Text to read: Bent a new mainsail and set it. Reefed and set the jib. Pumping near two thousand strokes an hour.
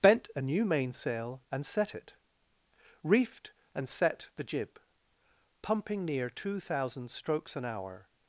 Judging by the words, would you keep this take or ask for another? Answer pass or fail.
pass